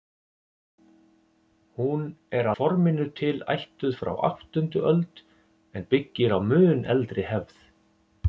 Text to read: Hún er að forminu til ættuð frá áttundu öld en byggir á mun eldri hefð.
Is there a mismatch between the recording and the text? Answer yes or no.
yes